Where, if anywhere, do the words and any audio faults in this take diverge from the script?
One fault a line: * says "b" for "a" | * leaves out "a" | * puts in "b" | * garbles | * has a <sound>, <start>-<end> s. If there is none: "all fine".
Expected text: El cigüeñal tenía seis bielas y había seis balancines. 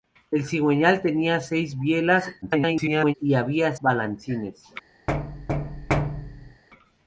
* garbles
* leaves out "seis"
* has a thud, 5.1-6.6 s